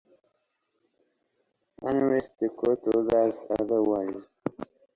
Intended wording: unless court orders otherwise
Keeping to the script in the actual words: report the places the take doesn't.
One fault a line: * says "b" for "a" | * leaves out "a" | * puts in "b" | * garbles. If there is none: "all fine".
* puts in "the"